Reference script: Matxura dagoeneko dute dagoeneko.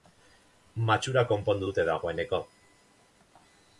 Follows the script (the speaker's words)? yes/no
no